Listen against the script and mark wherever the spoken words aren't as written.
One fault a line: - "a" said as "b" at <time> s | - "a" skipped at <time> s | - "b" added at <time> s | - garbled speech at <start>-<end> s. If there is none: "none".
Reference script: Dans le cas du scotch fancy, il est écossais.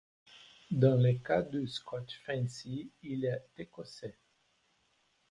none